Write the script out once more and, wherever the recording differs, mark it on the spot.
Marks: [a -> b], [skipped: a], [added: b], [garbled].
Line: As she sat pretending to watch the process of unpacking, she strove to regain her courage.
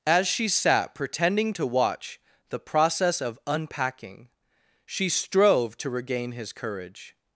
As she sat pretending to watch the process of unpacking, she strove to regain [her -> his] courage.